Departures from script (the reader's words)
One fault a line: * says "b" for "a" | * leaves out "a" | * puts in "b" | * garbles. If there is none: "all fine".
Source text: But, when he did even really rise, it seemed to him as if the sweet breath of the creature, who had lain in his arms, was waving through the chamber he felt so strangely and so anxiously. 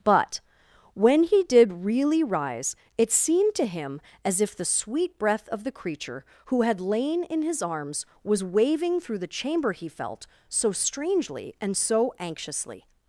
* leaves out "even"